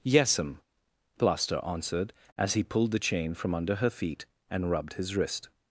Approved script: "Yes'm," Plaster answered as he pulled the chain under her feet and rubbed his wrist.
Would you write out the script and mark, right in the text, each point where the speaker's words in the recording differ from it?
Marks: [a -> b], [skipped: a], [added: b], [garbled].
"Yes'm," Plaster answered as he pulled the chain [added: from] under her feet and rubbed his wrist.